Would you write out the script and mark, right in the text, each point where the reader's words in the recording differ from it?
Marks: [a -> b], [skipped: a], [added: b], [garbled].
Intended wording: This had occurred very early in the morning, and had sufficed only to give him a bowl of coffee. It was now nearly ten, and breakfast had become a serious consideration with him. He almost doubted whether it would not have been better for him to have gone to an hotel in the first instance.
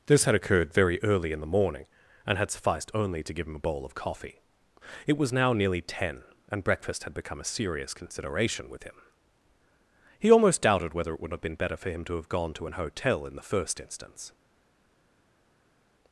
This had occurred very early in the morning, and had sufficed only to give him a bowl of coffee. It was now nearly ten, and breakfast had become a serious consideration with him. He almost doubted whether it would [skipped: not] have been better for him to have gone to an hotel in the first instance.